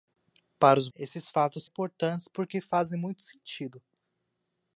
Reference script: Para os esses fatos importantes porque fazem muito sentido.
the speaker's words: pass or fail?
pass